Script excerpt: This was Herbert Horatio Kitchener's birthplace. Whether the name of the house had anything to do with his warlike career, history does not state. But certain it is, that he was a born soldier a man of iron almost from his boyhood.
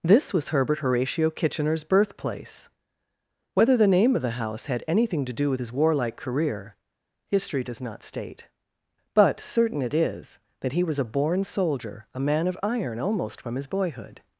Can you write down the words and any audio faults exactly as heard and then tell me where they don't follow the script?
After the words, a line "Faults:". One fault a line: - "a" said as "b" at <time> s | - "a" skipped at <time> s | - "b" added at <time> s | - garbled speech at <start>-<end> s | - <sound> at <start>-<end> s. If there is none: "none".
This was Herbert Horatio Kitchener's birthplace. Whether the name of the house had anything to do with his warlike career, history does not state. But certain it is, that he was a born soldier a man of iron almost from his boyhood.
Faults:
none